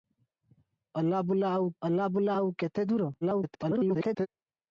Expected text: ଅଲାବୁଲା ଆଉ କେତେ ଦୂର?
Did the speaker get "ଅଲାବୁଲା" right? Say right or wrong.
right